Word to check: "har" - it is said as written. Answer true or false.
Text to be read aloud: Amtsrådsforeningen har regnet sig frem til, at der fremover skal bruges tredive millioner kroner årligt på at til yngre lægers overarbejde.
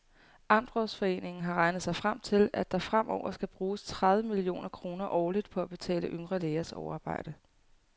true